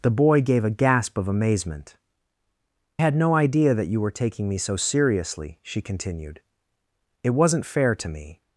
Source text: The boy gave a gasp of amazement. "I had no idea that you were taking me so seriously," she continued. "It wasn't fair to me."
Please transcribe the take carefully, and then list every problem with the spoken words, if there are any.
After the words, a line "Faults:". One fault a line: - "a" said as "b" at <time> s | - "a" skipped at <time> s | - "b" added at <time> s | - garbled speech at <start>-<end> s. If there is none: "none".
The boy gave a gasp of amazement. "had no idea that you were taking me so seriously," she continued. "It wasn't fair to me."
Faults:
- "I" skipped at 2.0 s